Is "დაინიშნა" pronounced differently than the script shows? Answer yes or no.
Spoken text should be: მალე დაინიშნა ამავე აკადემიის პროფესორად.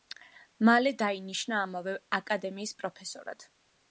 no